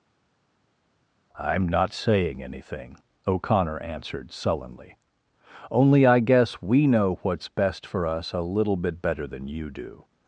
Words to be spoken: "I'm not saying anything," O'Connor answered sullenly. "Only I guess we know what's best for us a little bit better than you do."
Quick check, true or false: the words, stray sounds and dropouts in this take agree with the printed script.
true